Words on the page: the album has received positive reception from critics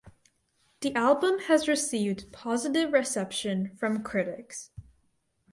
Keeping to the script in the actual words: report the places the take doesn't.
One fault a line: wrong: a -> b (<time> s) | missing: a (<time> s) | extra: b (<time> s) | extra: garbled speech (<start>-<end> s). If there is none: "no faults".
no faults